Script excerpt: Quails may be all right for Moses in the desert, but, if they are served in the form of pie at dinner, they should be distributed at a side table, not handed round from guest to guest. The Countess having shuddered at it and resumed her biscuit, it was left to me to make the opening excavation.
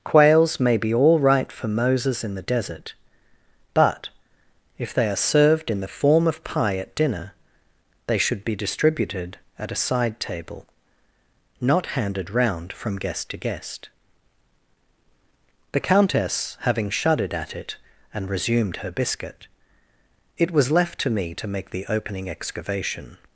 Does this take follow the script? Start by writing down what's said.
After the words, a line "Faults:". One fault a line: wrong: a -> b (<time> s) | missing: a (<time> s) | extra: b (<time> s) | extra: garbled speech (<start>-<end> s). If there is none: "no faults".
Quails may be all right for Moses in the desert, but, if they are served in the form of pie at dinner, they should be distributed at a side table, not handed round from guest to guest. The Countess having shuddered at it and resumed her biscuit, it was left to me to make the opening excavation.
Faults:
no faults